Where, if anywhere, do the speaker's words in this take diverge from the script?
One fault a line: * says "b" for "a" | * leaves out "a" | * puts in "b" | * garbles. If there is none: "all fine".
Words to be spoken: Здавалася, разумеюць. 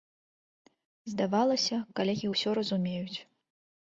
* puts in "калегі ўсё"